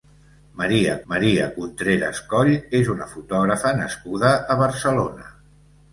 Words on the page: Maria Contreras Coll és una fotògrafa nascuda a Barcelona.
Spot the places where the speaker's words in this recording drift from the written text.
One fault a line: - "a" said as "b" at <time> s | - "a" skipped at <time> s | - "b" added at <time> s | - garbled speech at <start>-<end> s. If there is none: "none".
- "maria" added at 1.1 s